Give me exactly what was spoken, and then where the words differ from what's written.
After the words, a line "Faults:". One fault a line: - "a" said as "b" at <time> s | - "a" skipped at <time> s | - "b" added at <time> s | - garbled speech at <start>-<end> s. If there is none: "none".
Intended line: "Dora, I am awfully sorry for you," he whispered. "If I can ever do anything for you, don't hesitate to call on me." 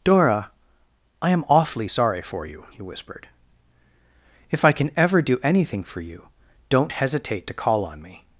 "Dora, I am awfully sorry for you," he whispered. "If I can ever do anything for you, don't hesitate to call on me."
Faults:
none